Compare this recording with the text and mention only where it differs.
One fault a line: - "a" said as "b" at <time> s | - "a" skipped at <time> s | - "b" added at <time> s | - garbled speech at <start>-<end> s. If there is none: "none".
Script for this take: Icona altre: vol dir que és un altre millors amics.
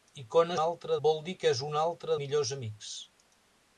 none